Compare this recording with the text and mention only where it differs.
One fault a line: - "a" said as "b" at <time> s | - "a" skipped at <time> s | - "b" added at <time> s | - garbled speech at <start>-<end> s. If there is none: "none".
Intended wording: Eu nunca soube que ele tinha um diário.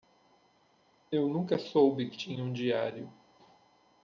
- "ele" skipped at 2.2 s